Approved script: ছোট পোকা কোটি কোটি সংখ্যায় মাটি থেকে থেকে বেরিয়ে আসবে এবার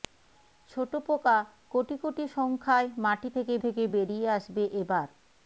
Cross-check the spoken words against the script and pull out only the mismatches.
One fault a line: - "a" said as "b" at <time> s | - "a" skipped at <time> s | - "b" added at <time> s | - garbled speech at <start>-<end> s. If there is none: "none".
none